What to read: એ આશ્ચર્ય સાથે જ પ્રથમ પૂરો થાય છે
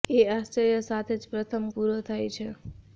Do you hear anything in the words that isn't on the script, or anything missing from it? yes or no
no